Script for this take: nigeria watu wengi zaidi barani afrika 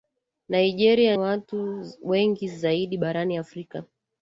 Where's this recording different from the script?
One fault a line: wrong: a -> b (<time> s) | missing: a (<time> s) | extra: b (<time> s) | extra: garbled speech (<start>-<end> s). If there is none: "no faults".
no faults